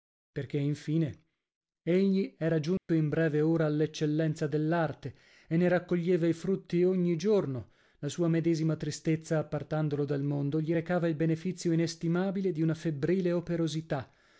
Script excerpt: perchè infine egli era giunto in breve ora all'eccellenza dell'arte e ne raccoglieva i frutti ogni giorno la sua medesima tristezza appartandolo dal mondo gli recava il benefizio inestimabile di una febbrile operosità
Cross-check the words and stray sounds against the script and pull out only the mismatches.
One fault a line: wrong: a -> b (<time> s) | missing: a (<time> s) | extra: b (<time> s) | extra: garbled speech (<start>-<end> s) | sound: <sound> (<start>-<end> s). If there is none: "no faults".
sound: dropout (2.8-2.9 s)